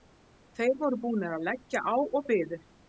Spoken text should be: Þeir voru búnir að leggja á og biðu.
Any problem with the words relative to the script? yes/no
no